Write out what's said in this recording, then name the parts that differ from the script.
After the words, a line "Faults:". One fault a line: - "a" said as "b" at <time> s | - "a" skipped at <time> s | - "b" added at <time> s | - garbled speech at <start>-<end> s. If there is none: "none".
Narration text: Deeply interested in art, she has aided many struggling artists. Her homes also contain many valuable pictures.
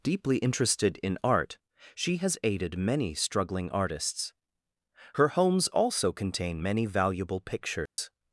Deeply interested in art, she has aided many struggling artists. Her homes also contain many valuable pictures.
Faults:
none